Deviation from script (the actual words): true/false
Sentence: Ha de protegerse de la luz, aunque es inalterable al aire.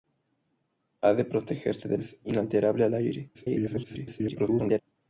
true